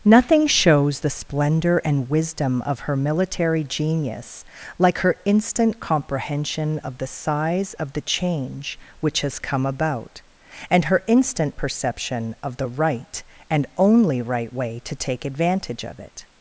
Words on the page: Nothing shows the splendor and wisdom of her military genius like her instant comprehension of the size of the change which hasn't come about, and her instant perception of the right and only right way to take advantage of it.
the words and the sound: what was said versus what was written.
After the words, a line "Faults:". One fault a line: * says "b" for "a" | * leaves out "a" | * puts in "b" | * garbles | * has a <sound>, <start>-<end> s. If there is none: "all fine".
Nothing shows the splendor and wisdom of her military genius like her instant comprehension of the size of the change which has come about, and her instant perception of the right and only right way to take advantage of it.
Faults:
* says "has" for "hasn't"